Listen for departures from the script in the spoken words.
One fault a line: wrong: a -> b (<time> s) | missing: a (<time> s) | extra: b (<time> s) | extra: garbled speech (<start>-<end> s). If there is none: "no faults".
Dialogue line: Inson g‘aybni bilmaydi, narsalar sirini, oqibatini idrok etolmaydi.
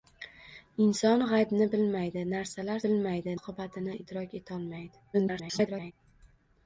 wrong: sirini -> bilmaydi (2.9 s)
extra: garbled speech (5.1-5.9 s)